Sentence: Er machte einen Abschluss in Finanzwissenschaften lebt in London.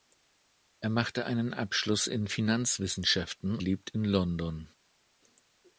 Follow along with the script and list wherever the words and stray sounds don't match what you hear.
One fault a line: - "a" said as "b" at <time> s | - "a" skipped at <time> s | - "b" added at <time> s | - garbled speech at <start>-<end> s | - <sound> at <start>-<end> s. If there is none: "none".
none